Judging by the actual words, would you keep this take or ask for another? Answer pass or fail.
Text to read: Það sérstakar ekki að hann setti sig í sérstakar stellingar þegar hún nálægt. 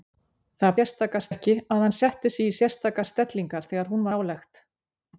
pass